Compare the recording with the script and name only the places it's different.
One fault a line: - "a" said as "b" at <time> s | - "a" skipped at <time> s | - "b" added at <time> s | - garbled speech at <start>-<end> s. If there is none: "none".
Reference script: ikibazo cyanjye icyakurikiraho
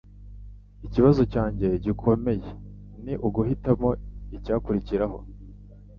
- "gikomeye ni uguhitamo" added at 1.8 s